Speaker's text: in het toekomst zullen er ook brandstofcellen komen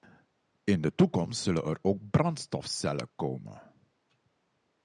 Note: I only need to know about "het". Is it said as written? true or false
false